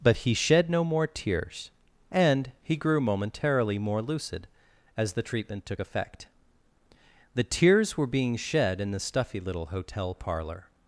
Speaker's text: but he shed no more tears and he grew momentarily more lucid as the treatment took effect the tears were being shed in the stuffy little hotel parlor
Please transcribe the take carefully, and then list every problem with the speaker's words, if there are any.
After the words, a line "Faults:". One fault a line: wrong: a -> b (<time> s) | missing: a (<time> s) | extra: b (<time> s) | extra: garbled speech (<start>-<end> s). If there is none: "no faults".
but he shed no more tears and he grew momentarily more lucid as the treatment took effect the tears were being shed in the stuffy little hotel parlor
Faults:
no faults